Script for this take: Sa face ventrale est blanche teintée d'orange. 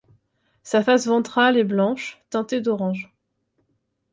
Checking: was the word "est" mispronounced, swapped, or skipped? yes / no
no